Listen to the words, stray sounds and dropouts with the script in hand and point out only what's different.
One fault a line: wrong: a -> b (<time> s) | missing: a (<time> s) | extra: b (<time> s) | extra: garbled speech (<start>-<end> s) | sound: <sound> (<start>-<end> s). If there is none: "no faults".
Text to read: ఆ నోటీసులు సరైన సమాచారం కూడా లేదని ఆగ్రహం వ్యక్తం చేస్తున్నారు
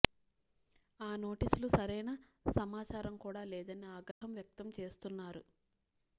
sound: dropout (4.1-4.2 s)